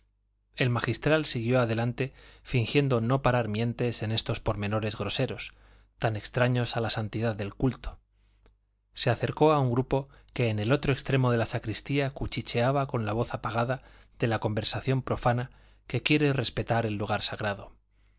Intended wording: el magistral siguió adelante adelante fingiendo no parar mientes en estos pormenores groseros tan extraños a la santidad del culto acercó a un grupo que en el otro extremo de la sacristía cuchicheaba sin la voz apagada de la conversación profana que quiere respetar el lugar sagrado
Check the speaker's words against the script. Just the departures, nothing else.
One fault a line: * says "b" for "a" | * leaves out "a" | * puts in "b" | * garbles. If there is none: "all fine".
* leaves out "adelante"
* puts in "se"
* says "con" for "sin"